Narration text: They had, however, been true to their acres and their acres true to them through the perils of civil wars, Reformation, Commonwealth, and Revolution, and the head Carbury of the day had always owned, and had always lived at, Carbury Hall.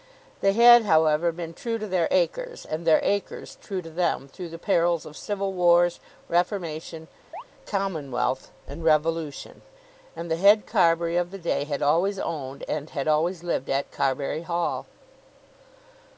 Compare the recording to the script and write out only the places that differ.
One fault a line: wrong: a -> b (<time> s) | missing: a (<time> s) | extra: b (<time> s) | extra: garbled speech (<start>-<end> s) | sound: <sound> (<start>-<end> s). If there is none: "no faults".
sound: chirp (7.3-7.4 s)